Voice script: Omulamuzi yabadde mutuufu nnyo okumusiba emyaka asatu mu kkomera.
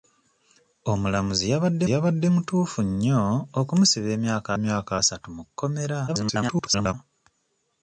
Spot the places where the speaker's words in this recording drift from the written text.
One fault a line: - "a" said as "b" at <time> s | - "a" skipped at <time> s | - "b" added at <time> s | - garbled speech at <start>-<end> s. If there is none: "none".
- "yabadde" added at 1.9 s
- "emyaka" added at 4.6 s
- garbled speech at 6.1-6.9 s